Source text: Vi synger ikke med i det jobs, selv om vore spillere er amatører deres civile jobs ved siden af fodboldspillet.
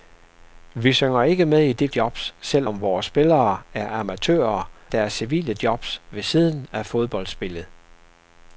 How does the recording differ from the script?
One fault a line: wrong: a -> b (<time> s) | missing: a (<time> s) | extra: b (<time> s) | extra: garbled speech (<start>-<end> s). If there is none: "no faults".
no faults